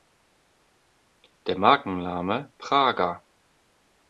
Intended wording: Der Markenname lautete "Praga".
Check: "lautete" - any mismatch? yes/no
yes